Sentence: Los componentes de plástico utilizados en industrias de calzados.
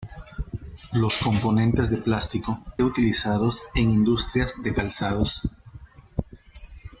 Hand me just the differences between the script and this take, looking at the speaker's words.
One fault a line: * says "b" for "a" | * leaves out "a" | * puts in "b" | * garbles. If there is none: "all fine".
all fine